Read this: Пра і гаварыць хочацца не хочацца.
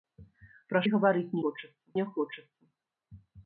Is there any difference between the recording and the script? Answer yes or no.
no